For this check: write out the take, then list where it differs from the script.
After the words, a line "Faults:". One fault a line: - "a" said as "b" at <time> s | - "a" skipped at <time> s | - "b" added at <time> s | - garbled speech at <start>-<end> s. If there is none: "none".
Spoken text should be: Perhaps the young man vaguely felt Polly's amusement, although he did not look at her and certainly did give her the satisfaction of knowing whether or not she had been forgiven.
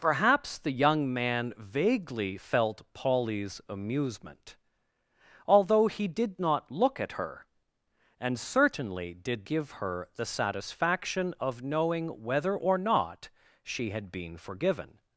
Perhaps the young man vaguely felt Polly's amusement, although he did not look at her and certainly did give her the satisfaction of knowing whether or not she had been forgiven.
Faults:
none